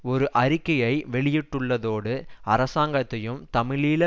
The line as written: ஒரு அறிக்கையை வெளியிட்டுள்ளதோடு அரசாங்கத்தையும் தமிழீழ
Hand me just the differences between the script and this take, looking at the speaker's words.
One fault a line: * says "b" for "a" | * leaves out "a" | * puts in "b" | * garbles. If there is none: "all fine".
all fine